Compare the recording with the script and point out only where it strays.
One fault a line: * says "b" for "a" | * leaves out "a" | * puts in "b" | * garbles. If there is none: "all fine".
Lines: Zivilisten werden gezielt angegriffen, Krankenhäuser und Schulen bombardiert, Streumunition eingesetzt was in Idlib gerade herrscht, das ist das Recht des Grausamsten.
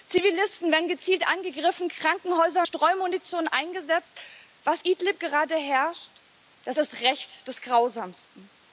* leaves out "und Schulen bombardiert"
* leaves out "in"
* leaves out "ist"